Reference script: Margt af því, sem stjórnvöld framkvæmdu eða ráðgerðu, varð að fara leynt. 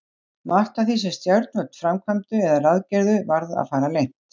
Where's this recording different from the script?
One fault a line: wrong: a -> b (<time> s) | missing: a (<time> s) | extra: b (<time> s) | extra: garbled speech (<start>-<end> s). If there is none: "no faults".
no faults